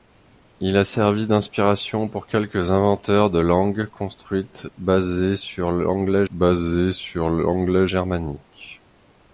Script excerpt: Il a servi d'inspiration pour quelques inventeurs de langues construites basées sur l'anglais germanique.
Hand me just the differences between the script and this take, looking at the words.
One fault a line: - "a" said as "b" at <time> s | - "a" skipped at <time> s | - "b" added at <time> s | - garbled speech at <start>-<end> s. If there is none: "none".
- "basées sur l'anglais" added at 6.3 s